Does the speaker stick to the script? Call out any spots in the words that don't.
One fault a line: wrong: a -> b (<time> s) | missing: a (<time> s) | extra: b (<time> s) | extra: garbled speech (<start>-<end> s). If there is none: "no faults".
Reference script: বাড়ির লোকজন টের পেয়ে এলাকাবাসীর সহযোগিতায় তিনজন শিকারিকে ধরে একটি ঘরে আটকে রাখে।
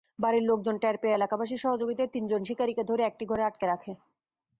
no faults